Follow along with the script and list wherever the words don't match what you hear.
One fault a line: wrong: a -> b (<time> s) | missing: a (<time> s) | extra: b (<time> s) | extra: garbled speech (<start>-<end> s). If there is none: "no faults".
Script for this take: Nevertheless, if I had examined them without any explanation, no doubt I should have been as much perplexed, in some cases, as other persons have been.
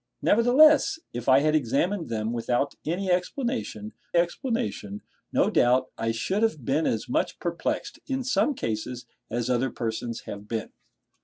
extra: explanation (4.2 s)